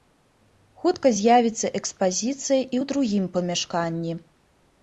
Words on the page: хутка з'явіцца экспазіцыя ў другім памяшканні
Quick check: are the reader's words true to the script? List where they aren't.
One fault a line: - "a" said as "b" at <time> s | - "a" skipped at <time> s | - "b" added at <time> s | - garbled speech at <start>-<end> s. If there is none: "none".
- "і" added at 2.6 s